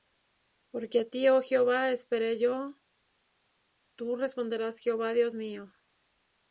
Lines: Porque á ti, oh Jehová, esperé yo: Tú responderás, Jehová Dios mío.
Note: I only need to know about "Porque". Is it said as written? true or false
true